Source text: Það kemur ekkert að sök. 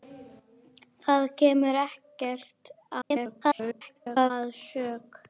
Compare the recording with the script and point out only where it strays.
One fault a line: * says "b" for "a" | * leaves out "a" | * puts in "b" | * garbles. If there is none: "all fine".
* garbles